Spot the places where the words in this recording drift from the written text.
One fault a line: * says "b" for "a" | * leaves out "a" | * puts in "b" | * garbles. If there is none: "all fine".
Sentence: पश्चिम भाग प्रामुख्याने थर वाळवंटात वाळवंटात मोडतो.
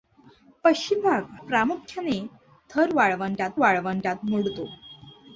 all fine